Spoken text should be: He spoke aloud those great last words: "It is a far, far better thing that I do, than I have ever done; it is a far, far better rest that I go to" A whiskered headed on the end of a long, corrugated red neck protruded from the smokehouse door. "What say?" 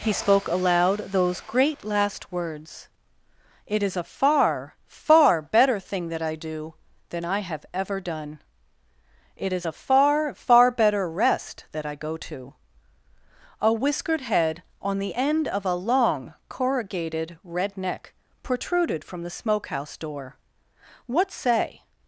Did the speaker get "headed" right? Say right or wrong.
wrong